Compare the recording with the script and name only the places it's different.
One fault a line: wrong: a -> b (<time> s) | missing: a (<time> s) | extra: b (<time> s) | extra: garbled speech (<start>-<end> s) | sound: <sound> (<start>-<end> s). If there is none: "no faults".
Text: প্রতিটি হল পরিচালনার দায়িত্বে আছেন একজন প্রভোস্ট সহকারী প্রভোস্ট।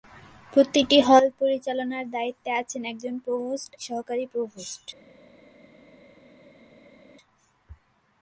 no faults